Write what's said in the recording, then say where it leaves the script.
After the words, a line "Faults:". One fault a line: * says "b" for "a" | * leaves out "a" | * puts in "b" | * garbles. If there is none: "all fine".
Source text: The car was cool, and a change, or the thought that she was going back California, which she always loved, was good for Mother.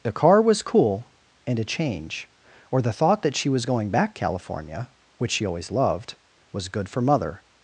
The car was cool, and a change, or the thought that she was going back California, which she always loved, was good for Mother.
Faults:
all fine